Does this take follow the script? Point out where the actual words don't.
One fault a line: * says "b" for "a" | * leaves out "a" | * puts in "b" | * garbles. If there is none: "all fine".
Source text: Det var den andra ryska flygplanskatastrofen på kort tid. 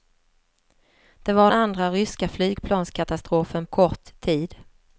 * leaves out "den"
* leaves out "på"